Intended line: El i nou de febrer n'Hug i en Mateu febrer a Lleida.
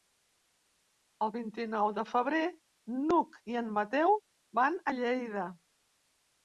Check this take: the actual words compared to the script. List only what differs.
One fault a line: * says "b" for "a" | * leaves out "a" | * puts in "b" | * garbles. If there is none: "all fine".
* puts in "vint"
* says "van" for "febrer"